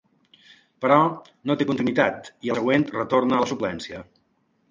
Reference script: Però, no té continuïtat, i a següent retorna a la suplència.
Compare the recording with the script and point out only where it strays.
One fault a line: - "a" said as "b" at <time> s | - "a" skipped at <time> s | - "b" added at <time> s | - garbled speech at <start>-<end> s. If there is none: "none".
none